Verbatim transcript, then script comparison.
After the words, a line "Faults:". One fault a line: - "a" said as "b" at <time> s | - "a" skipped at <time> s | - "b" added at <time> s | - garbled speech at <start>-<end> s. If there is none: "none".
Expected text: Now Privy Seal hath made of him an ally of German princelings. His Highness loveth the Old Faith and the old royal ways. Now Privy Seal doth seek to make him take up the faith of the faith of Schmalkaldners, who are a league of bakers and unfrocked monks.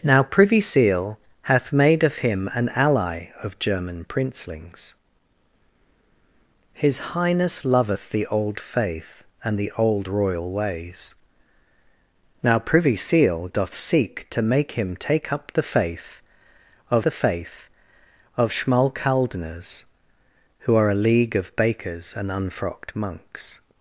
Now Privy Seal hath made of him an ally of German princelings. His Highness loveth the Old Faith and the old royal ways. Now Privy Seal doth seek to make him take up the faith of the faith of Schmalkaldners, who are a league of bakers and unfrocked monks.
Faults:
none